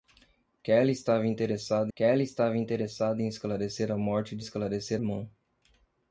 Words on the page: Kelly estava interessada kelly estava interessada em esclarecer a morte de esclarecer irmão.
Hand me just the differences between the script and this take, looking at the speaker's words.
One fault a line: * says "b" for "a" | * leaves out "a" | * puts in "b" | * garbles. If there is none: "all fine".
all fine